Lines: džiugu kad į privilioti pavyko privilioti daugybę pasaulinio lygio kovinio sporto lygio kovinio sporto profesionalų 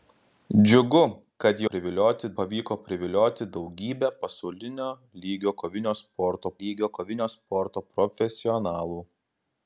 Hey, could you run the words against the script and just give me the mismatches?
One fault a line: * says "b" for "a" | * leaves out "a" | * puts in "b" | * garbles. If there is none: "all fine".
all fine